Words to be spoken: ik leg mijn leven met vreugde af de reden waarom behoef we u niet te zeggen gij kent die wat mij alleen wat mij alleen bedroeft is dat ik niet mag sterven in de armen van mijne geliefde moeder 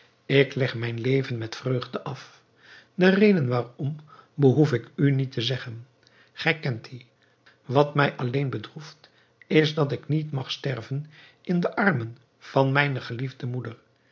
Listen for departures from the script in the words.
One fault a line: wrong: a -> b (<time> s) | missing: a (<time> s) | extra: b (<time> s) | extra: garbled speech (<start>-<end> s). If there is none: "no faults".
wrong: we -> ik (4.7 s)
missing: wat mij alleen (8.5 s)